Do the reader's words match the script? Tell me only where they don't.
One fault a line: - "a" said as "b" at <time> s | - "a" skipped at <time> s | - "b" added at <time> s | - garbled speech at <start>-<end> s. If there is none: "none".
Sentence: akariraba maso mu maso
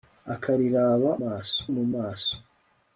none